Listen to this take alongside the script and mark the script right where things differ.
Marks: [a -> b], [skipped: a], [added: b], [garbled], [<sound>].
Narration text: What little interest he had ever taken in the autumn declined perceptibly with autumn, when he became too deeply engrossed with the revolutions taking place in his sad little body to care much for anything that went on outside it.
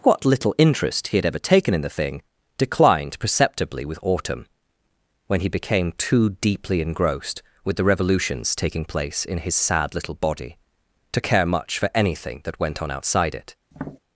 What little interest he had ever taken in the [autumn -> thing] declined perceptibly with autumn, when he became too deeply engrossed with the revolutions taking place in his sad little body to care much for anything that went on outside it. [tap]